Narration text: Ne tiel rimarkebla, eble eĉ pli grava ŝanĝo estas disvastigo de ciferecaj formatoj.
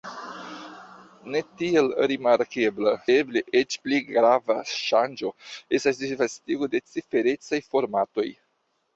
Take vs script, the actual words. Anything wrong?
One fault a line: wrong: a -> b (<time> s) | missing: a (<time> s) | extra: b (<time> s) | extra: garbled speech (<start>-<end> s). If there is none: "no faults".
no faults